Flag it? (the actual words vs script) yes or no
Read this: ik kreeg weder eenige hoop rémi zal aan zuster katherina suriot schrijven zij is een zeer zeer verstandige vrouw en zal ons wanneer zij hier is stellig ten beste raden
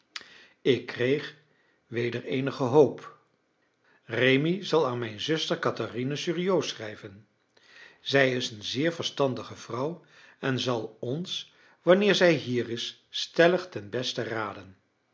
yes